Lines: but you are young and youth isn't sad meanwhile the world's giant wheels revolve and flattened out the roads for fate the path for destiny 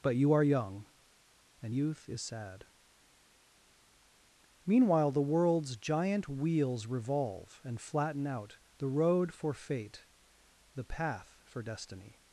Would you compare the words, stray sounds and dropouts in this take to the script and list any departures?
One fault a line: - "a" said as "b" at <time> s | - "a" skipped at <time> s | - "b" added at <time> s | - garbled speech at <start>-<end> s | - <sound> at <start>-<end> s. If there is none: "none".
- "isn't" said as "is" at 2.1 s
- "flattened" said as "flatten" at 7.8 s
- "roads" said as "road" at 8.9 s